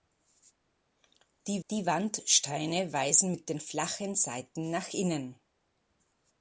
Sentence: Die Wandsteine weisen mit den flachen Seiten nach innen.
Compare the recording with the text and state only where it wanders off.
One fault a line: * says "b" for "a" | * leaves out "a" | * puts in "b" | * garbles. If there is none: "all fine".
* puts in "die"